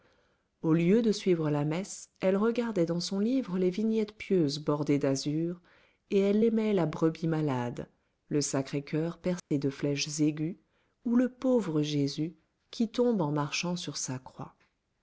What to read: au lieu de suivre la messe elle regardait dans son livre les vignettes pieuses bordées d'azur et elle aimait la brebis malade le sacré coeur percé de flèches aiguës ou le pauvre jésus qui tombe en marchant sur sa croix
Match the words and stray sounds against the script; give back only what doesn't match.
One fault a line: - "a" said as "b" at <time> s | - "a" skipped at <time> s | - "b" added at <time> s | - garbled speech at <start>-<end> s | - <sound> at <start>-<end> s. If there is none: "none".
- dropout at 9.4-9.5 s